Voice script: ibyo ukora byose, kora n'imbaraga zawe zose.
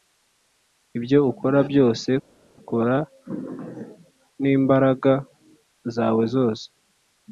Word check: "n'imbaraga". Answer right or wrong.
right